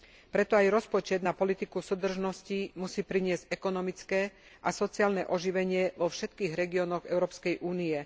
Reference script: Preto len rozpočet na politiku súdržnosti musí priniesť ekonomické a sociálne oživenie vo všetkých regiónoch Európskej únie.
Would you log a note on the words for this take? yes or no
yes